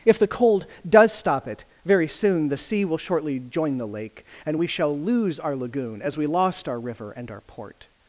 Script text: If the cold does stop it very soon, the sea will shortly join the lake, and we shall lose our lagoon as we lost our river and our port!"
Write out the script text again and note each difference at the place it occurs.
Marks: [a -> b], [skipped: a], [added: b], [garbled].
If the cold does stop it very soon, the sea will shortly join the lake, and we shall lose our lagoon as we lost our river and our port!"